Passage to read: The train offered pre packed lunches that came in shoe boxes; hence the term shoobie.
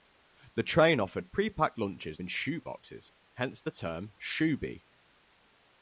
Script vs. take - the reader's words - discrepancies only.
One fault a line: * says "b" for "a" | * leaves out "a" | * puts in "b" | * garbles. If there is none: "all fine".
* leaves out "that came"